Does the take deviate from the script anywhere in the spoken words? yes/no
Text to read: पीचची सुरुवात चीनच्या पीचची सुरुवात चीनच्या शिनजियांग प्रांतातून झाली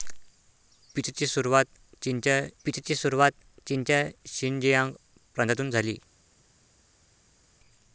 no